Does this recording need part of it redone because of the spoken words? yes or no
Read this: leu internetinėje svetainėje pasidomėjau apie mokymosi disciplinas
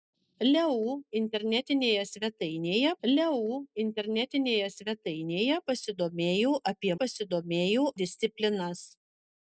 yes